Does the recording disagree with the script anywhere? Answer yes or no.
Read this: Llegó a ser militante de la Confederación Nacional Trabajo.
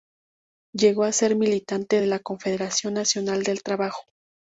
yes